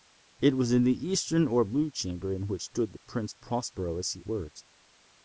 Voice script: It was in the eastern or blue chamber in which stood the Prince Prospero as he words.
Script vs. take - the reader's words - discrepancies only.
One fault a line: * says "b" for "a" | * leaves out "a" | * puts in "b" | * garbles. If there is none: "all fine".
all fine